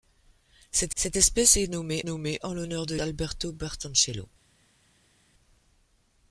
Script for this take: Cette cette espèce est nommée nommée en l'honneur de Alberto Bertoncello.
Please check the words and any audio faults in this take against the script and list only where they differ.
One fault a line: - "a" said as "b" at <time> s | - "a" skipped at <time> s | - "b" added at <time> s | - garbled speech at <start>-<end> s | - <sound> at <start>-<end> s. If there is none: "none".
none